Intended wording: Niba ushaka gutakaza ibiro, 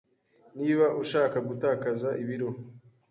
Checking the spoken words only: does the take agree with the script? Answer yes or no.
yes